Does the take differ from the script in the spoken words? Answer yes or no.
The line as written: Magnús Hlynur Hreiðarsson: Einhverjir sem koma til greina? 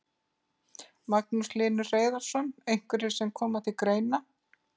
no